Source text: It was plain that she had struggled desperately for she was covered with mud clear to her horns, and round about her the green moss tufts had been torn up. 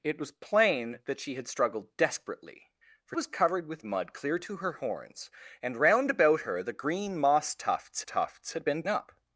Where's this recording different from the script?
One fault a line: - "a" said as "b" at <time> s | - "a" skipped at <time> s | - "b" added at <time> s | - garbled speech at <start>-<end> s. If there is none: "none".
- "she" skipped at 3.1 s
- "tufts" added at 8.0 s
- "torn" skipped at 8.8 s